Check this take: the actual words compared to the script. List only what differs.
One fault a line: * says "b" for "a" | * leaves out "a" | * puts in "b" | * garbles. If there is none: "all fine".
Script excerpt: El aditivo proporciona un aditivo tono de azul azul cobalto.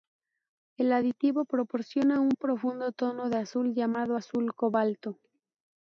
* says "profundo" for "aditivo"
* puts in "llamado"